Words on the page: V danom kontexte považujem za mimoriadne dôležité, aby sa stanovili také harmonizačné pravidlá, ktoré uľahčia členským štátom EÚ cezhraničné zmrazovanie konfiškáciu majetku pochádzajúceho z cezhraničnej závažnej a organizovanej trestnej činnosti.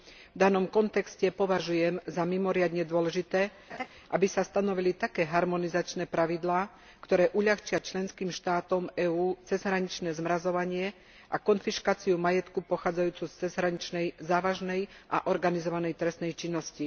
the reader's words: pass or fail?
fail